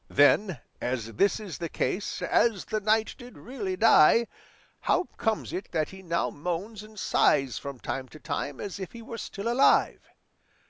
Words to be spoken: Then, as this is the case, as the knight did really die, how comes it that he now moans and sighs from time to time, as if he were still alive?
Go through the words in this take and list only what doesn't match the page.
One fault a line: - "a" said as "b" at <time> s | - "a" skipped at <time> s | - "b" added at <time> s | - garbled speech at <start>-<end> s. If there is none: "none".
none